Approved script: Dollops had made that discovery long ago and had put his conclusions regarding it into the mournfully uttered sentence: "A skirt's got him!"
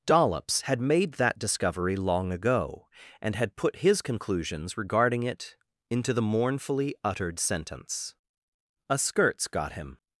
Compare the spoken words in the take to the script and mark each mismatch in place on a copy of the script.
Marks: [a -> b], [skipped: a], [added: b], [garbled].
Dollops had made that discovery long ago and had put his conclusions regarding it into the mournfully uttered sentence: "A skirt's got him!"